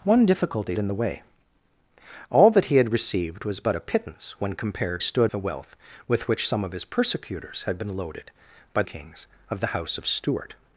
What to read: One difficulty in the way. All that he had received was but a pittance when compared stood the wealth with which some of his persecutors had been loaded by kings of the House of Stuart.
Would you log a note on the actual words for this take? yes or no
no